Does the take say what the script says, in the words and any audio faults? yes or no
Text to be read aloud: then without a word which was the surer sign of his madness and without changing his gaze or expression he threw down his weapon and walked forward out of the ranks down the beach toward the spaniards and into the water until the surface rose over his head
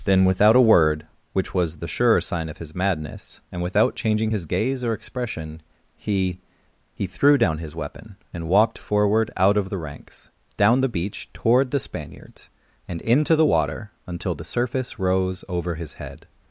no